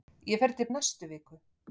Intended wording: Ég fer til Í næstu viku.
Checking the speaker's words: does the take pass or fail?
pass